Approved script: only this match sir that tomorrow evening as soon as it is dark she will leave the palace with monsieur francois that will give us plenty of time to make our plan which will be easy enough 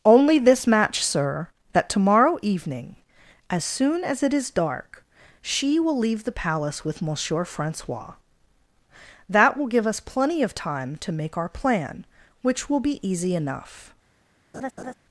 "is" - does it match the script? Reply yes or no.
yes